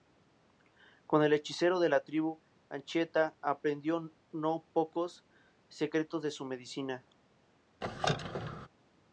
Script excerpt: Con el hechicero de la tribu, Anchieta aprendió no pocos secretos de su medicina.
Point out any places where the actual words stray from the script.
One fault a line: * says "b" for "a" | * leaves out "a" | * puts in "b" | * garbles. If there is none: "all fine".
all fine